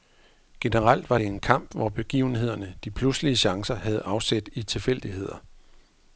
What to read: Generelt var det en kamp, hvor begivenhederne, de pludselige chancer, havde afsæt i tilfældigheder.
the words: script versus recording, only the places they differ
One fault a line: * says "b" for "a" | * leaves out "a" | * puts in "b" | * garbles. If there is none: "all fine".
all fine